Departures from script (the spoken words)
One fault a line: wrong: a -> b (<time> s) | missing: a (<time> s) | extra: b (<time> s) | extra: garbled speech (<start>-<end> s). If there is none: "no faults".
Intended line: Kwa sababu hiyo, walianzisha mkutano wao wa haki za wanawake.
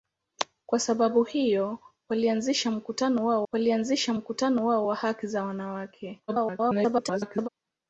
extra: walianzisha mkutano wao (3.5 s)
extra: garbled speech (6.3-7.5 s)